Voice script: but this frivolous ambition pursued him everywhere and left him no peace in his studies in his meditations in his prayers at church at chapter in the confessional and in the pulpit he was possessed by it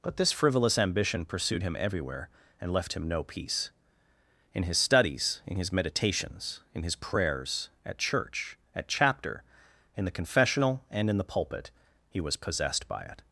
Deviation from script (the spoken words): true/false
false